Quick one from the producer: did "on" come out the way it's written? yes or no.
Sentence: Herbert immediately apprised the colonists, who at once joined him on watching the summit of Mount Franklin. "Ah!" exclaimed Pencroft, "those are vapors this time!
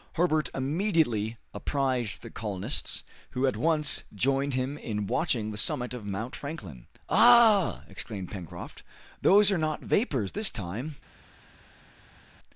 no